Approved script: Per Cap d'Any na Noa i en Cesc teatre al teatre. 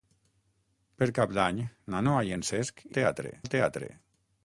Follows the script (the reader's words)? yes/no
yes